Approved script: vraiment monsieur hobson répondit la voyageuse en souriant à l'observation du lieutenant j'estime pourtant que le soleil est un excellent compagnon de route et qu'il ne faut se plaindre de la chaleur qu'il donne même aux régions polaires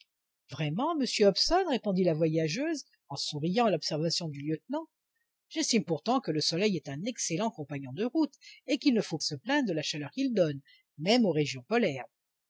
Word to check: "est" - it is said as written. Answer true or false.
true